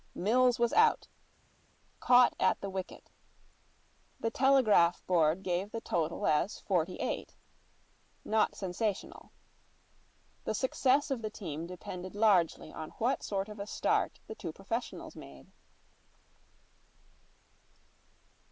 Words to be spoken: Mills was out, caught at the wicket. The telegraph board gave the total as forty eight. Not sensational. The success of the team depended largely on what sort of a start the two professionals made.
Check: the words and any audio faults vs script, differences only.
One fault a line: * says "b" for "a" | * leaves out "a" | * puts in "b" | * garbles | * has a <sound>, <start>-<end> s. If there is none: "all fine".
all fine